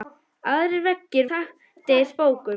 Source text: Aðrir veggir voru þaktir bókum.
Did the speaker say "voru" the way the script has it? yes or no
no